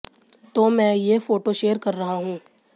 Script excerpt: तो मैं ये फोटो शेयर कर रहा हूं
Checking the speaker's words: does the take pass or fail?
pass